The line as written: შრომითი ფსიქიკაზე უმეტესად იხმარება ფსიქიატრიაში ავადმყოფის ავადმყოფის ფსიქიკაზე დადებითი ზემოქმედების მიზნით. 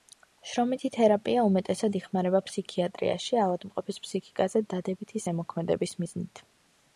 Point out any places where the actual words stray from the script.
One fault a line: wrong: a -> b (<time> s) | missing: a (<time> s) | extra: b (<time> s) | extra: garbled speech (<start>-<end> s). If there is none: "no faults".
wrong: ფსიქიკაზე -> თერაპია (0.9 s)
missing: ავადმყოფის (4.0 s)